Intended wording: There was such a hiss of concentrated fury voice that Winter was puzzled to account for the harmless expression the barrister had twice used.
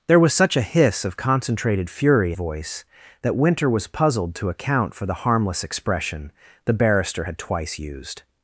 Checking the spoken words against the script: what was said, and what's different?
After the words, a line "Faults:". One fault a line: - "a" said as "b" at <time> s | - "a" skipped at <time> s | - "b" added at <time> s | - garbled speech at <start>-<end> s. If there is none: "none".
There was such a hiss of concentrated fury voice that Winter was puzzled to account for the harmless expression the barrister had twice used.
Faults:
none